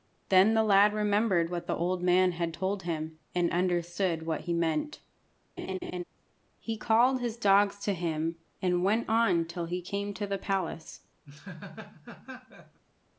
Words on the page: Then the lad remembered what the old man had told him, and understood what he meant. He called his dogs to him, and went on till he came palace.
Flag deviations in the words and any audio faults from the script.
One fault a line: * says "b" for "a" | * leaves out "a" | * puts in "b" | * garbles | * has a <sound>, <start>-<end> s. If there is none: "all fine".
* has a laugh, 5.6-6.0 s
* puts in "to the"
* has a laugh, 11.2-12.8 s